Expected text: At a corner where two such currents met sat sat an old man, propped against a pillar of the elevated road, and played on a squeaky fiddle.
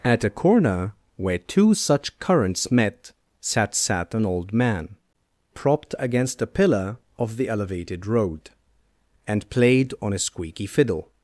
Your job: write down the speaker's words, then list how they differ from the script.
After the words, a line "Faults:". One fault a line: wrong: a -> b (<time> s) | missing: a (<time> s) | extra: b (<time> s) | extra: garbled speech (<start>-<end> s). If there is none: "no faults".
At a corner where two such currents met sat sat an old man, propped against a pillar of the elevated road, and played on a squeaky fiddle.
Faults:
no faults